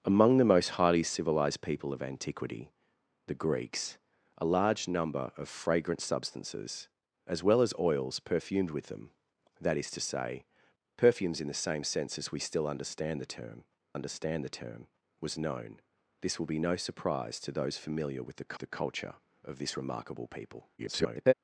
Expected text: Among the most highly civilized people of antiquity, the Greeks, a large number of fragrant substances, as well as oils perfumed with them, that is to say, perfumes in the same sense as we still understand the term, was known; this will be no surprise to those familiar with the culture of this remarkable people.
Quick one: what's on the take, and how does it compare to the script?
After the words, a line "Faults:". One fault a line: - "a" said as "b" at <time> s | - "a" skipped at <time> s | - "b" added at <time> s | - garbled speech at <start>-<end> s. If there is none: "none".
Among the most highly civilized people of antiquity, the Greeks, a large number of fragrant substances, as well as oils perfumed with them, that is to say, perfumes in the same sense as we still understand the term understand the term, was known; this will be no surprise to those familiar with the the culture of this remarkable people. [garbled]
Faults:
- "understand the term" added at 13.9 s
- "the" added at 18.6 s
- garbled speech at 20.8-21.3 s